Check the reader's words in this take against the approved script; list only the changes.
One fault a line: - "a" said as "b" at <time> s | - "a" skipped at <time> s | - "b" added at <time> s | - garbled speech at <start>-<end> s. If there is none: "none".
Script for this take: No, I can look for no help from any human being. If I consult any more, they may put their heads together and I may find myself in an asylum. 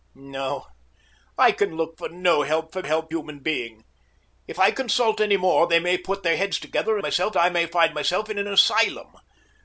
- "any" said as "help" at 2.8 s
- "and" said as "myself" at 7.0 s